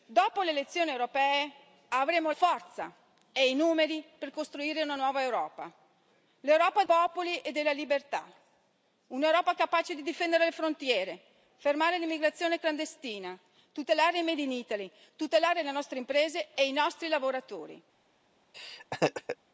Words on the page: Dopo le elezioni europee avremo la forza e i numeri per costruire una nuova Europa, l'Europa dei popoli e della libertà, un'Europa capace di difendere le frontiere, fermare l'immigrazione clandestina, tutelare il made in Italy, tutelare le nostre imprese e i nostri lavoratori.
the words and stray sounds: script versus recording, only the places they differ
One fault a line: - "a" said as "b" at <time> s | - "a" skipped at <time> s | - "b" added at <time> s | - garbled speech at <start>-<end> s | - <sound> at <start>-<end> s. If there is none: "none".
- "la" skipped at 2.3 s
- "dei" skipped at 6.8 s
- laugh at 18.5-19.4 s